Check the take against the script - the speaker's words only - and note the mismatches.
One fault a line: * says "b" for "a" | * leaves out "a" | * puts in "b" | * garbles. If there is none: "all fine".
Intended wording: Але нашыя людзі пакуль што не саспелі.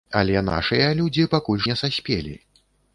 * leaves out "што"